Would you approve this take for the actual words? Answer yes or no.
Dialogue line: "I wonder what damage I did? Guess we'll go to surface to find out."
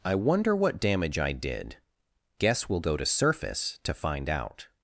yes